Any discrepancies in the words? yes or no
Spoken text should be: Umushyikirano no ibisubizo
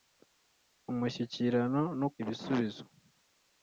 no